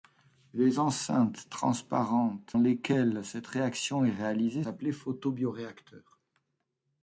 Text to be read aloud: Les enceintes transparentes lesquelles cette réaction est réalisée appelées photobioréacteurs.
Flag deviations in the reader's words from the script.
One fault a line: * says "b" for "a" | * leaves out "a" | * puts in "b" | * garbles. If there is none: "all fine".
all fine